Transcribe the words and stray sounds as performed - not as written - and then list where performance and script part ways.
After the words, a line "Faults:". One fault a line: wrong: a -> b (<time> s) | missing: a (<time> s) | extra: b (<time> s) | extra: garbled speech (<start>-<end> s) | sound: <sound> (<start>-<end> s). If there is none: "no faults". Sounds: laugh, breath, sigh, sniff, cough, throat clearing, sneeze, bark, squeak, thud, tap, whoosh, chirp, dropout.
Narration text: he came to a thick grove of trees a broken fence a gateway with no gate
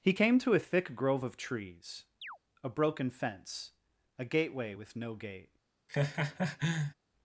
he came to a thick grove of trees a broken fence a gateway with no gate
Faults:
sound: chirp (2.2-2.4 s)
sound: laugh (5.9-6.9 s)